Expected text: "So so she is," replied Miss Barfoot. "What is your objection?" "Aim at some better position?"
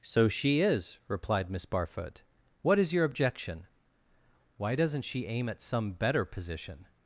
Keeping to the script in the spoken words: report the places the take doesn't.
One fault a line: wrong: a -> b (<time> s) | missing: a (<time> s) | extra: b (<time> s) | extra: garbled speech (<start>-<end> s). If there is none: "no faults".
missing: so (0.3 s)
extra: Why doesn't she (4.6 s)